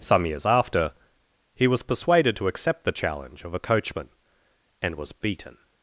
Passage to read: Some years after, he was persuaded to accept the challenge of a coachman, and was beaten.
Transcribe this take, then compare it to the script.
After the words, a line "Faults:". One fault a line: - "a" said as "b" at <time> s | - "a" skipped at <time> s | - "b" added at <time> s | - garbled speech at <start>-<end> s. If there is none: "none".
Some years after, he was persuaded to accept the challenge of a coachman, and was beaten.
Faults:
none